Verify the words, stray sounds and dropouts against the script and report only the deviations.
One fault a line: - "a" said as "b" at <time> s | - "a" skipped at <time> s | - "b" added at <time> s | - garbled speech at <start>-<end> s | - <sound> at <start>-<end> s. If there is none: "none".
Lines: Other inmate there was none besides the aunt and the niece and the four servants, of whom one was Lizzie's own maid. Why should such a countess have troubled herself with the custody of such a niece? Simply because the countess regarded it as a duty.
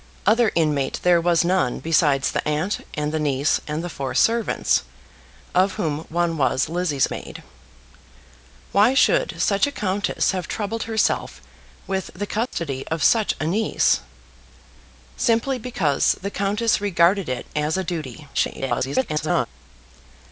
- "own" skipped at 7.1 s
- dropout at 12.5-12.5 s
- garbled speech at 18.3-19.5 s